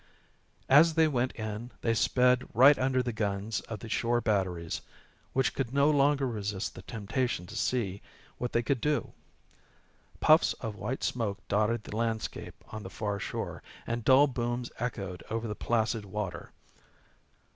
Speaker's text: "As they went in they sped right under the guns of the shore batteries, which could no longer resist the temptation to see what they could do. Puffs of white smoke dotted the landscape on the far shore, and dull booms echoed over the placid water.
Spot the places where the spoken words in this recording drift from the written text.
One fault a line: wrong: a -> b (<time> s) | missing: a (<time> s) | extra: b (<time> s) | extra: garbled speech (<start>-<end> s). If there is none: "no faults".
no faults